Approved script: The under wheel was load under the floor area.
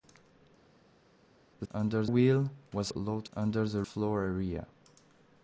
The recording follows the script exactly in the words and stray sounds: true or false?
true